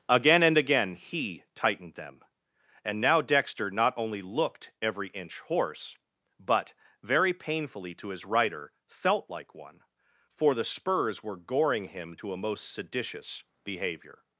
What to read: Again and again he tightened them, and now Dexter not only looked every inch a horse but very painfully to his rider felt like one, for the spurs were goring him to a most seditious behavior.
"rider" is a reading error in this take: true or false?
false